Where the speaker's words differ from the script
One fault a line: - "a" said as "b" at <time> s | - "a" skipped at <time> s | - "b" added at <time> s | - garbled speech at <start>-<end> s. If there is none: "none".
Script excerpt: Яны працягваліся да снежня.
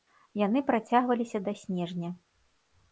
none